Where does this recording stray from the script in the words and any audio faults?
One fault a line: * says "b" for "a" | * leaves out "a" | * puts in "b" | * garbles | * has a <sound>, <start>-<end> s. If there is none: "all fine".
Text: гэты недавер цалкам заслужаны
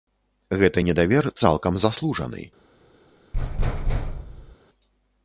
* has a thud, 3.3-4.6 s